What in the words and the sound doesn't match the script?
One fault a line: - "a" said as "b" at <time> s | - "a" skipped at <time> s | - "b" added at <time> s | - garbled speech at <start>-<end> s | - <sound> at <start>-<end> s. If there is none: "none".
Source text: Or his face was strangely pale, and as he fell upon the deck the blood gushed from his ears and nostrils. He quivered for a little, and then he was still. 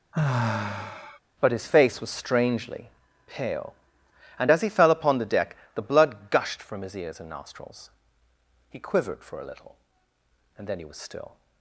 - sigh at 0.1-1.2 s
- "Or" said as "But" at 1.4 s